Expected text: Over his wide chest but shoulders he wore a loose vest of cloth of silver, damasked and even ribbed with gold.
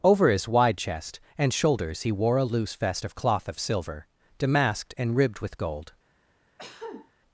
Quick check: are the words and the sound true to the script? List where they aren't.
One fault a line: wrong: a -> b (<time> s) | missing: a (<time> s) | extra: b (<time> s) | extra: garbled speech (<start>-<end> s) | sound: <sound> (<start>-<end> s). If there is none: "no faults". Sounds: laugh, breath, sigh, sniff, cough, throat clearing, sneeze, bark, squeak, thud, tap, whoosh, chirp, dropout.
wrong: but -> and (1.4 s)
missing: even (5.2 s)
sound: cough (6.6-7.1 s)